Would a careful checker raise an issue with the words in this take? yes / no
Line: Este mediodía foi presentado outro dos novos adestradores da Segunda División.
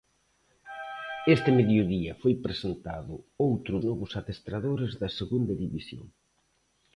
yes